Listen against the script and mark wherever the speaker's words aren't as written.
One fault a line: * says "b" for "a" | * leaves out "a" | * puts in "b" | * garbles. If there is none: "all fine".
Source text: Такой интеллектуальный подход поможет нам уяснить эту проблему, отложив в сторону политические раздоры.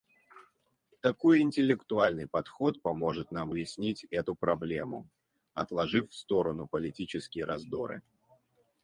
all fine